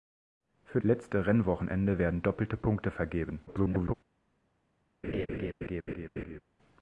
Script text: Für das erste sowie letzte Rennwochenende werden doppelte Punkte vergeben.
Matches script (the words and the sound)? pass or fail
fail